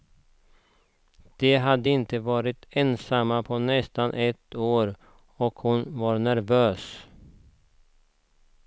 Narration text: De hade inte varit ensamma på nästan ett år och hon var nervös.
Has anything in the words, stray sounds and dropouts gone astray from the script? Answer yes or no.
no